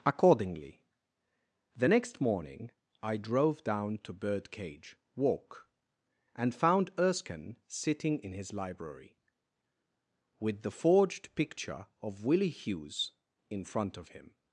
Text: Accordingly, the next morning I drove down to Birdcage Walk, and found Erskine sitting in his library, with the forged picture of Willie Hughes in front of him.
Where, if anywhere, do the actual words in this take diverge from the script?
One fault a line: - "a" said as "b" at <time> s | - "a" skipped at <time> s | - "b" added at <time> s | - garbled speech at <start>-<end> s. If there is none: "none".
none